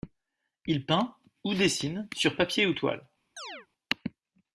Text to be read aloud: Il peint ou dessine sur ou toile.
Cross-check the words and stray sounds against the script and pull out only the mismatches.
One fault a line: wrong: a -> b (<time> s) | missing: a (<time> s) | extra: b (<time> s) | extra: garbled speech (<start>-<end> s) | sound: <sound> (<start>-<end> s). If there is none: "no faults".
extra: papier (2.4 s)
sound: chirp (3.4-3.7 s)